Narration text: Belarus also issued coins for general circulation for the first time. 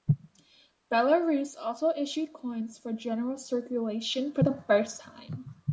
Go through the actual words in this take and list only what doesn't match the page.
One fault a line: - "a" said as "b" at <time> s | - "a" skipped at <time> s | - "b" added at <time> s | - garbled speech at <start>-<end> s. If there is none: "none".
none